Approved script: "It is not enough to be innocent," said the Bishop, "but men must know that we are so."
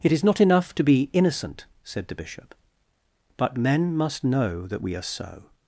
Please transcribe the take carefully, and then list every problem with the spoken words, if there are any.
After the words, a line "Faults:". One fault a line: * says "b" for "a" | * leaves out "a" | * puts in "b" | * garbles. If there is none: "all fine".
"It is not enough to be innocent," said the Bishop, "but men must know that we are so."
Faults:
all fine